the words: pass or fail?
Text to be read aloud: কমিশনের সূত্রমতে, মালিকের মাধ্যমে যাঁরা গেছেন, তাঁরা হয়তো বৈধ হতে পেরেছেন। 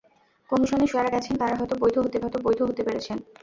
fail